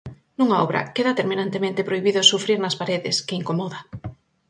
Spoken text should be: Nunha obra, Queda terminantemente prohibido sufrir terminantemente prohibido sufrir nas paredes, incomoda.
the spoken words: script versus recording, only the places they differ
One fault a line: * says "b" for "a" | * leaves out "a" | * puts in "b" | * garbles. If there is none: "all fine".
* leaves out "terminantemente prohibido sufrir"
* puts in "que"